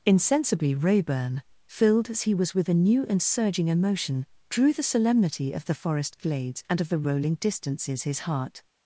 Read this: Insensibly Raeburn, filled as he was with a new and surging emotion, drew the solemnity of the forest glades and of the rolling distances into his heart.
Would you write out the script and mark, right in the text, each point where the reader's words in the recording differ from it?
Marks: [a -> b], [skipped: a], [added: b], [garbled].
Insensibly Raeburn, filled as he was with a new and surging emotion, drew the solemnity of the forest glades and of the rolling distances [skipped: into] his heart.